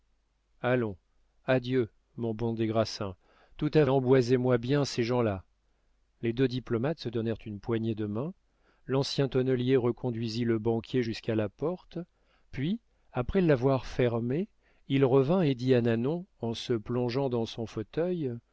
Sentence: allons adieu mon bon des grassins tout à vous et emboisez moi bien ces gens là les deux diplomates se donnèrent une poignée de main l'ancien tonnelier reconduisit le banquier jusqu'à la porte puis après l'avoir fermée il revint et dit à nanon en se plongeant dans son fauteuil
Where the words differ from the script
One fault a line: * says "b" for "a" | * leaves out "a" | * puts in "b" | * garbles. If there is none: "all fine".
* leaves out "vous et"